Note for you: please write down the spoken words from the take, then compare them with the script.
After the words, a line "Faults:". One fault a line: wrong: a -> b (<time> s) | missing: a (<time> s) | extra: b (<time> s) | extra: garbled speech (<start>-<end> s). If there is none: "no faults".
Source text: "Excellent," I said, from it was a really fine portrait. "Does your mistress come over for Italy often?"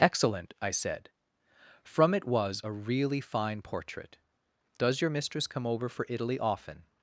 "Excellent," I said, from it was a really fine portrait. "Does your mistress come over for Italy often?"
Faults:
no faults